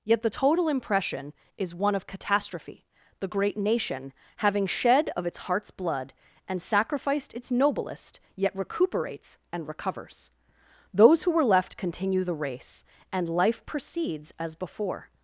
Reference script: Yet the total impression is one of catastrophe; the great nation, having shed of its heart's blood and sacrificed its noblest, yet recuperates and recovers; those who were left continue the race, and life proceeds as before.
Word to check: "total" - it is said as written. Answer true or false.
true